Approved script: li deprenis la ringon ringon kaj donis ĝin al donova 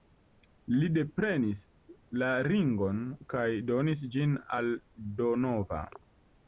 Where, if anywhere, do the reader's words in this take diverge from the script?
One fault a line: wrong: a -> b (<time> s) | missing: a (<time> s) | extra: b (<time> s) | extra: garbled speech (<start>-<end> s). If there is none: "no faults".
missing: ringon (3.0 s)